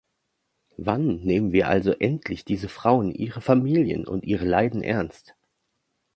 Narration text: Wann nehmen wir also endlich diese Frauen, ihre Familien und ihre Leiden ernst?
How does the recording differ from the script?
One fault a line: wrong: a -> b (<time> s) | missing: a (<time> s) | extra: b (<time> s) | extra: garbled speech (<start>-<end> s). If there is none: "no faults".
no faults